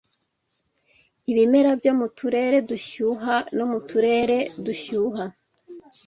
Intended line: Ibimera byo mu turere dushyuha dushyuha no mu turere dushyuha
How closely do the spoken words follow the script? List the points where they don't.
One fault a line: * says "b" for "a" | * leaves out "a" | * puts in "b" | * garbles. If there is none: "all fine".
* leaves out "dushyuha"